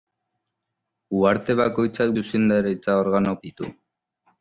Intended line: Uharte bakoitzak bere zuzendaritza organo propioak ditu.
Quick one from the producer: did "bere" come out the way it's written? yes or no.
no